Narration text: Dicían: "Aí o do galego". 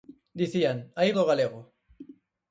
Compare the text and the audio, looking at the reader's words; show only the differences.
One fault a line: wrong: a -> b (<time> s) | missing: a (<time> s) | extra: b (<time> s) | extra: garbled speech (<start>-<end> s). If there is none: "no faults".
no faults